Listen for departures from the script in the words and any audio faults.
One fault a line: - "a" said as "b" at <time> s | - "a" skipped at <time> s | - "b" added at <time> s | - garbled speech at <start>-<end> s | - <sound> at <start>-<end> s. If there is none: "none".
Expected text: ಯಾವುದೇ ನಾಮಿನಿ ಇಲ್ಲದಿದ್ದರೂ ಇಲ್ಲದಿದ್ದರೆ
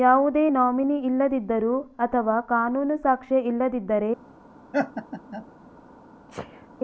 - "ಅಥವಾ ಕಾನೂನು ಸಾಕ್ಷ್ಯ" added at 2.0 s
- laugh at 4.7-5.5 s
- sneeze at 6.3-6.7 s